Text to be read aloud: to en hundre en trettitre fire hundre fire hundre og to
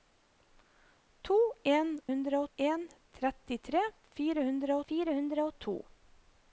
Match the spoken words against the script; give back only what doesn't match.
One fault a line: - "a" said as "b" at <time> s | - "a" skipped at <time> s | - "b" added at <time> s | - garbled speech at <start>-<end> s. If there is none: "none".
none